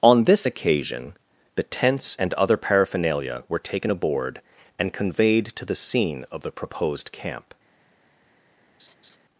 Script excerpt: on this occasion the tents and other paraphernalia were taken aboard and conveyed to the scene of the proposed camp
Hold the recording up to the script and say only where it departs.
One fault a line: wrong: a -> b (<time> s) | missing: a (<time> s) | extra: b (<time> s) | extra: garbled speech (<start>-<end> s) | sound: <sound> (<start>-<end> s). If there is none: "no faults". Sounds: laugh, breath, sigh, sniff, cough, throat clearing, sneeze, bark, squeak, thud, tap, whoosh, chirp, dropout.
sound: laugh (8.8-9.2 s)